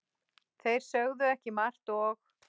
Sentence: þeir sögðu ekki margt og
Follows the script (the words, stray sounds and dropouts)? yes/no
yes